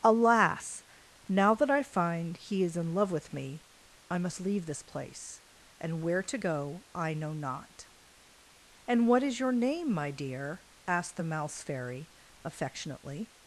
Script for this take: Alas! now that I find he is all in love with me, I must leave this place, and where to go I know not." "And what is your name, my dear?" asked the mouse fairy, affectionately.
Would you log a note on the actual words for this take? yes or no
yes